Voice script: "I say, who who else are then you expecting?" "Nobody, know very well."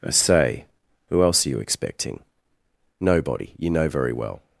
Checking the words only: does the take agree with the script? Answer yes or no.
no